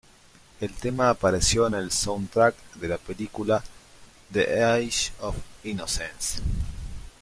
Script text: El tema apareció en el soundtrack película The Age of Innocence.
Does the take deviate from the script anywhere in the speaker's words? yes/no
yes